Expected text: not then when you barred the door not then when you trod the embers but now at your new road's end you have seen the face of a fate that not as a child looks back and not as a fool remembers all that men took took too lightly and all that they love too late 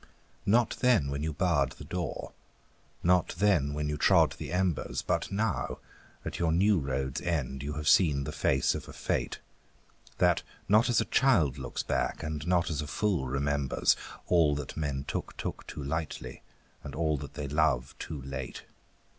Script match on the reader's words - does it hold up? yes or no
yes